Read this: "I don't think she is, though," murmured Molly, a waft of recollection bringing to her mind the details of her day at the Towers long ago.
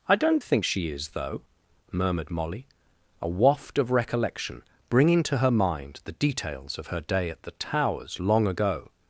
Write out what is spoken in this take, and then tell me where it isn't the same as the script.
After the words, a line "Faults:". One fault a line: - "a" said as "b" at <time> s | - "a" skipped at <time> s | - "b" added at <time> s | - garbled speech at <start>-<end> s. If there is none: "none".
"I don't think she is, though," murmured Molly, a waft of recollection bringing to her mind the details of her day at the Towers long ago.
Faults:
none